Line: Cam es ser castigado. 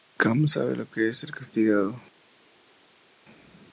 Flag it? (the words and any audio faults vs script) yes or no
yes